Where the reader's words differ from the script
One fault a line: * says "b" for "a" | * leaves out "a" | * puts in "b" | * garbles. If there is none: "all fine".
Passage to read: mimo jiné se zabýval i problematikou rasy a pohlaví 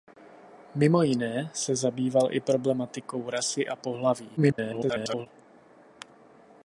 * garbles